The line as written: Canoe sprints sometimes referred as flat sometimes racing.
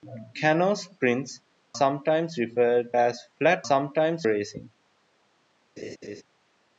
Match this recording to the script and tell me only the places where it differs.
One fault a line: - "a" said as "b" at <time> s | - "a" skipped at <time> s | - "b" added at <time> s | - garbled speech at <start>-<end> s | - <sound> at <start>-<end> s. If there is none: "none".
- laugh at 5.8-6.2 s